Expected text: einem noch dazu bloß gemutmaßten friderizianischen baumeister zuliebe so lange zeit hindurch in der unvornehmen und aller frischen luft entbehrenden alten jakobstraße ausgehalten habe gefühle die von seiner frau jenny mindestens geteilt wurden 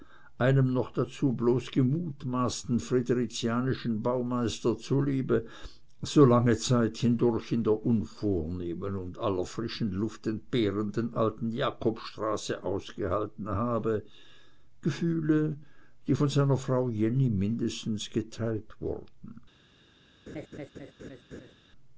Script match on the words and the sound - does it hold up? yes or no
no